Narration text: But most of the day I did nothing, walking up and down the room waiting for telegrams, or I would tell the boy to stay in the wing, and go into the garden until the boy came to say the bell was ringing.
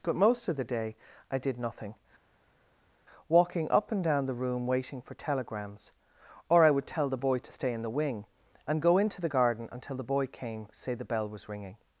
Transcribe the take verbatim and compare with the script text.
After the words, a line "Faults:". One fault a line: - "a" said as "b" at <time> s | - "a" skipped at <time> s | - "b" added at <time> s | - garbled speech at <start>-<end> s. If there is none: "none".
But most of the day I did nothing, walking up and down the room waiting for telegrams, or I would tell the boy to stay in the wing, and go into the garden until the boy came say the bell was ringing.
Faults:
- "to" skipped at 10.7 s